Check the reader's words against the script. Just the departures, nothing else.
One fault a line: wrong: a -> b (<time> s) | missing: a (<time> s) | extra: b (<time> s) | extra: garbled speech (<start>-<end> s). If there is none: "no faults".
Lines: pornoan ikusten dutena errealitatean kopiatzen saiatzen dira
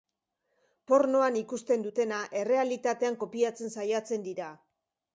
no faults